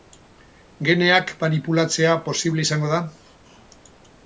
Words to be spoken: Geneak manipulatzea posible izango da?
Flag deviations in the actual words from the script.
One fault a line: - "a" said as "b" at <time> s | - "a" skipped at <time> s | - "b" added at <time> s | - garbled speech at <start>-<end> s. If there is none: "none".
none